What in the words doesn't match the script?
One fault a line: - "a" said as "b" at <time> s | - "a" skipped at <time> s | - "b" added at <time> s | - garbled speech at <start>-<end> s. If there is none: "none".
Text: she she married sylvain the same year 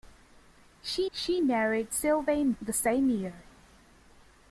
none